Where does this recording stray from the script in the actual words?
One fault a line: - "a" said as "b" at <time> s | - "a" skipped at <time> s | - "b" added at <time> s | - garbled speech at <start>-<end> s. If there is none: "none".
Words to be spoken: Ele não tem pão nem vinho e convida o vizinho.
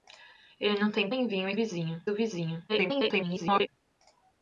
- "pão" skipped at 1.1 s
- "convida" said as "vizinho" at 1.5 s
- garbled speech at 2.7-3.7 s